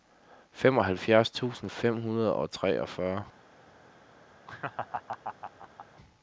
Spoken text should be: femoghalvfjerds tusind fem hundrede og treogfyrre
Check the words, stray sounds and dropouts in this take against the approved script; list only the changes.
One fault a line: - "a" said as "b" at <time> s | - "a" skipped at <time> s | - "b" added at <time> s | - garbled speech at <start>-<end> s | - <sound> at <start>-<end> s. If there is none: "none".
- laugh at 4.5-5.9 s